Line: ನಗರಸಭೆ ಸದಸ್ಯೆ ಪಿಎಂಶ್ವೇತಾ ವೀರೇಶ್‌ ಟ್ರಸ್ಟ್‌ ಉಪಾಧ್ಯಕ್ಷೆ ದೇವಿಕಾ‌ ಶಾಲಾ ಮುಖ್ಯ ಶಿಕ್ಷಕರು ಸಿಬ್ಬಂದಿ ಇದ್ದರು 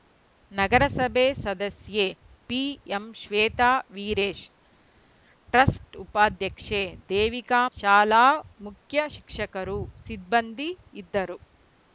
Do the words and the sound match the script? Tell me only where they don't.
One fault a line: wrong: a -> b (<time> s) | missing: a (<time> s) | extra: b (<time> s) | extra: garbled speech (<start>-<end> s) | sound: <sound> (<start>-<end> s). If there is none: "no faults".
no faults